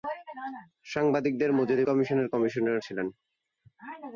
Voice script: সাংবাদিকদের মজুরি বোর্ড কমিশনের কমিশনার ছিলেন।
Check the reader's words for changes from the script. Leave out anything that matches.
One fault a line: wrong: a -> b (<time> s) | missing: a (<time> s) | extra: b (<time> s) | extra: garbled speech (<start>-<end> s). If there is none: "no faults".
missing: বোর্ড (1.9 s)